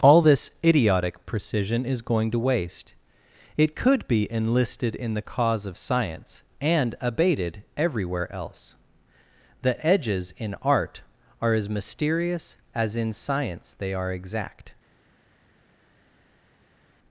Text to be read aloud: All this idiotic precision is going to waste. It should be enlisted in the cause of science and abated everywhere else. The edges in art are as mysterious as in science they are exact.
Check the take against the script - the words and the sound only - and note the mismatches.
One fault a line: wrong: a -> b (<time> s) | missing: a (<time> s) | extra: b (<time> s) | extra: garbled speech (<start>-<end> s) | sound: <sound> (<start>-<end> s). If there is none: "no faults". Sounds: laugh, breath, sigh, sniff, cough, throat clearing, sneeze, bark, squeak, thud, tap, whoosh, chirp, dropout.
wrong: should -> could (3.7 s)